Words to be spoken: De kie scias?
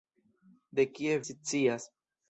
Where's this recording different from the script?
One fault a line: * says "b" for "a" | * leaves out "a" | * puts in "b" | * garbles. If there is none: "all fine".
all fine